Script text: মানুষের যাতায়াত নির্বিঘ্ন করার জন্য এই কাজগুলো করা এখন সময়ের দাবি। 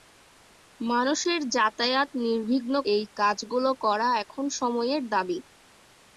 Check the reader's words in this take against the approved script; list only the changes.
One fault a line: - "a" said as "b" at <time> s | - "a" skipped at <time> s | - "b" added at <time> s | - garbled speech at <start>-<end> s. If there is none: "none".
- "করার জন্য" skipped at 2.7 s